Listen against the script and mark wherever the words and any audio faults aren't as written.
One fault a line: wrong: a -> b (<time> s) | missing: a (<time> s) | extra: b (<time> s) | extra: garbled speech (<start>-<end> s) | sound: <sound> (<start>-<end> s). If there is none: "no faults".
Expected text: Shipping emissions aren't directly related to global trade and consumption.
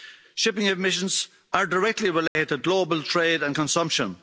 wrong: aren't -> are (1.5 s)
sound: dropout (2.3-2.4 s)